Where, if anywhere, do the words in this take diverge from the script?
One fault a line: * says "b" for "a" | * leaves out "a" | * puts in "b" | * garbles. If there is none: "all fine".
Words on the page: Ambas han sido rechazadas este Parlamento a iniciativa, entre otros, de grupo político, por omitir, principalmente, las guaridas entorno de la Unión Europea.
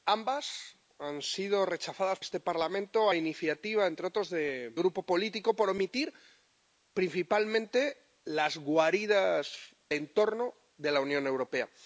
all fine